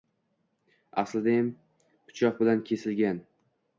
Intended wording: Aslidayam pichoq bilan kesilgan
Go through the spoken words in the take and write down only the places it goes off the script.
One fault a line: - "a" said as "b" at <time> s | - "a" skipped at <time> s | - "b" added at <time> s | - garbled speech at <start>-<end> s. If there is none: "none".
none